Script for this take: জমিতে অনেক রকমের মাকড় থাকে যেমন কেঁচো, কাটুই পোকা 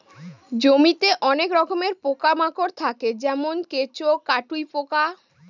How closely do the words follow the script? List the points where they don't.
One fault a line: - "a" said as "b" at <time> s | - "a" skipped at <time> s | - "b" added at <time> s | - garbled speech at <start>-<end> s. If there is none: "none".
- "পোকা" added at 2.0 s